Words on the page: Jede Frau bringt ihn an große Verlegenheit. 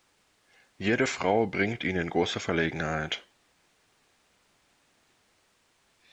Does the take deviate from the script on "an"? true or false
true